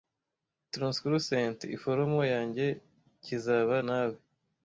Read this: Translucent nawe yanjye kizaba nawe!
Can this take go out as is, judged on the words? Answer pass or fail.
fail